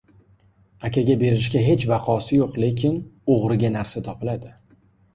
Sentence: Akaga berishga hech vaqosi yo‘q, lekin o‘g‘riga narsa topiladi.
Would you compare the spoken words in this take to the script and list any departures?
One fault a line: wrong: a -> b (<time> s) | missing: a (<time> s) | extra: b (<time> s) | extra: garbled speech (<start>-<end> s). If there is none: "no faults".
no faults